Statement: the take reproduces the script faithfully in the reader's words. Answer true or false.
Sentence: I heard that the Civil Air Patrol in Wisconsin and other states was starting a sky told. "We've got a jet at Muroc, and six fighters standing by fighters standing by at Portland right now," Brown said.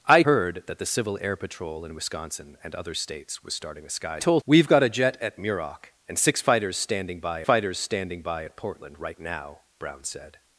true